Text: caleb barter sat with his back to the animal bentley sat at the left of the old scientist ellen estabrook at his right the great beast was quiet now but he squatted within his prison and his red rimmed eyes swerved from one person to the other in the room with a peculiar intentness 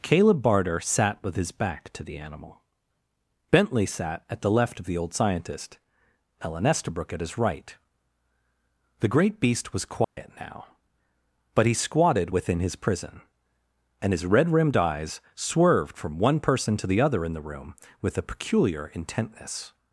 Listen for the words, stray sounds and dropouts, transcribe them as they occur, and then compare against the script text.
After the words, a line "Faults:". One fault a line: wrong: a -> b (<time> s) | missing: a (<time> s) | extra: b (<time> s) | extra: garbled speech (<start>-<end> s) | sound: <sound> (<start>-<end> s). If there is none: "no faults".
caleb barter sat with his back to the animal bentley sat at the left of the old scientist ellen estabrook at his right the great beast was quiet now but he squatted within his prison and his red rimmed eyes swerved from one person to the other in the room with a peculiar intentness
Faults:
sound: dropout (10.0-10.2 s)